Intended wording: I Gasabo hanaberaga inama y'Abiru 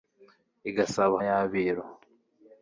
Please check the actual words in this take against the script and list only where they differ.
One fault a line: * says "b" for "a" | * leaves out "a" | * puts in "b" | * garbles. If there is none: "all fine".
* leaves out "hanaberaga inama"